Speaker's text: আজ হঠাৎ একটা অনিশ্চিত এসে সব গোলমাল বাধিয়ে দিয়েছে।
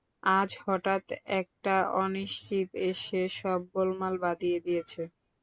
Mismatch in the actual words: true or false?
false